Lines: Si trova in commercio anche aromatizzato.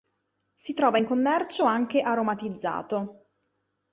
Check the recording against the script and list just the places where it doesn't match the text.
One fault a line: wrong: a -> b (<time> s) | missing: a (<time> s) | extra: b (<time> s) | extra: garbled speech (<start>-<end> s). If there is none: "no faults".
no faults